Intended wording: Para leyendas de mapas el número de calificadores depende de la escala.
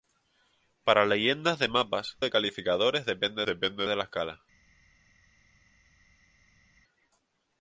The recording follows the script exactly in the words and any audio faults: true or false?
false